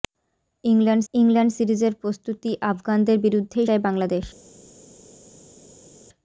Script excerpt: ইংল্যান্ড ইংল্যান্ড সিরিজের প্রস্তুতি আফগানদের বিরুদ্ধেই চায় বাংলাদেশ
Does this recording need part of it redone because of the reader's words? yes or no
no